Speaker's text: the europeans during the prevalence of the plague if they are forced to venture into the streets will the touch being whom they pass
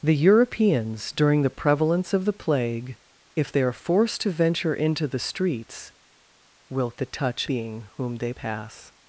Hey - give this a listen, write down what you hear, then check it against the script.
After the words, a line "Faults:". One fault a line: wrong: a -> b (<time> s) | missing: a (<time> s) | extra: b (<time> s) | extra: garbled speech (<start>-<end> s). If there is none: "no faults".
the europeans during the prevalence of the plague if they are forced to venture into the streets will the touch being whom they pass
Faults:
no faults